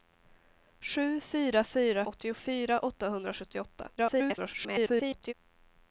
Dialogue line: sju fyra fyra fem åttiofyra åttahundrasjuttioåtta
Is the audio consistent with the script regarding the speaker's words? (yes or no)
no